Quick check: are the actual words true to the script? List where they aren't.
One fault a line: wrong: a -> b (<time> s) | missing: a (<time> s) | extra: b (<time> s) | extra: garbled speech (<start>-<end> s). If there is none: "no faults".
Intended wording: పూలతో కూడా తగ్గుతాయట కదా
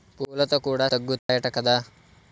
no faults